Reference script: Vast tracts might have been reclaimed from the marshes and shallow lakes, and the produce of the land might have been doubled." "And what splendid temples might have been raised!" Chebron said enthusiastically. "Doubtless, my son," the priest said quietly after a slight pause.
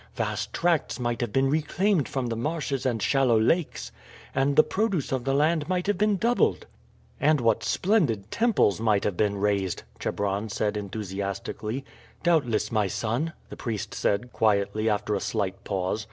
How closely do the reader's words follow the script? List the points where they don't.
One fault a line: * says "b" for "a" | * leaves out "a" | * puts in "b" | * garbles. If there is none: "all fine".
all fine